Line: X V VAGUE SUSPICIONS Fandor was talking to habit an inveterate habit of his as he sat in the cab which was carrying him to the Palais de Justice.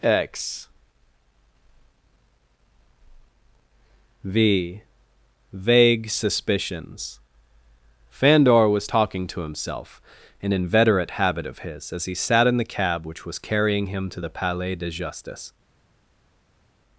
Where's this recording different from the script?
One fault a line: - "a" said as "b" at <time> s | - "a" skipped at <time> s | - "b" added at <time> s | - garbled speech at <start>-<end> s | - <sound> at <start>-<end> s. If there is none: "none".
- "habit" said as "himself" at 9.4 s